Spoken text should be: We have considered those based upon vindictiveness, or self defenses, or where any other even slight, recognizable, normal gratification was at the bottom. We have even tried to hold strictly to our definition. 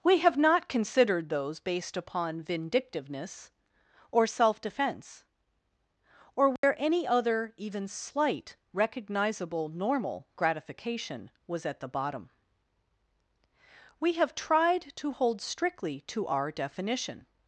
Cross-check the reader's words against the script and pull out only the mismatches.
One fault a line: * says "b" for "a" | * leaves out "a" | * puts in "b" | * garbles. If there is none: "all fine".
* puts in "not"
* says "defense" for "defenses"
* leaves out "even"